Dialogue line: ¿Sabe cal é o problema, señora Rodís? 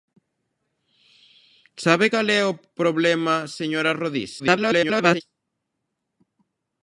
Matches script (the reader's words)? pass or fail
fail